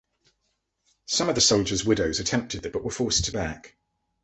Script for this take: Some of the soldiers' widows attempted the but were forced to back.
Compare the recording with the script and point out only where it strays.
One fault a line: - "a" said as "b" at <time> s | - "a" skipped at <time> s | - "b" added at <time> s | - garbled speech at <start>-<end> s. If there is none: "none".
none